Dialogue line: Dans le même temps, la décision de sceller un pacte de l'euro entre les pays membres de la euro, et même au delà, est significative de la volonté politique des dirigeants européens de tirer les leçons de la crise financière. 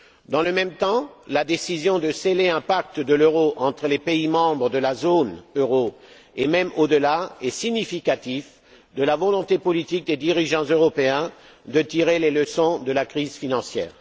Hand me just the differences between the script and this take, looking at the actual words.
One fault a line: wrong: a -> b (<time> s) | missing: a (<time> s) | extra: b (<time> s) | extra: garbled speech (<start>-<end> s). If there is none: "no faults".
extra: zone (5.0 s)